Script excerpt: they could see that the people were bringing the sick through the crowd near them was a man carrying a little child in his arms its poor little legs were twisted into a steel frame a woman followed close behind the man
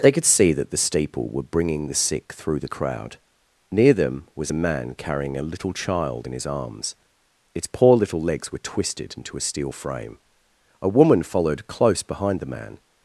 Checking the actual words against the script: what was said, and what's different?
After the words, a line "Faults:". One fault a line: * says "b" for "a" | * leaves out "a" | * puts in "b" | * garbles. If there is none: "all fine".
they could see that the steeple were bringing the sick through the crowd near them was a man carrying a little child in his arms its poor little legs were twisted into a steel frame a woman followed close behind the man
Faults:
* says "steeple" for "people"